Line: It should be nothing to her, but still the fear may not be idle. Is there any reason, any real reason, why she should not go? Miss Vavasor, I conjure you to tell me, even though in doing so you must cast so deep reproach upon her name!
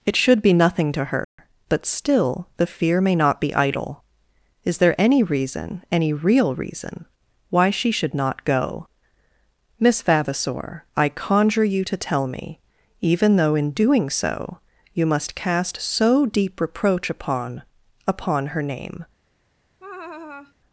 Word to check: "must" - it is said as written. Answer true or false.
true